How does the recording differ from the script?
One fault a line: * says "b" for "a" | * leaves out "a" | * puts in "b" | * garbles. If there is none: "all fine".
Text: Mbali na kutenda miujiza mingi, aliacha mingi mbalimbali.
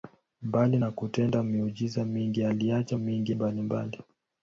all fine